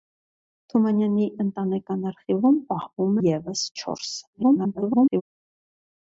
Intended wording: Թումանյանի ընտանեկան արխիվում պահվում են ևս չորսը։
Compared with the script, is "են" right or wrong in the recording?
wrong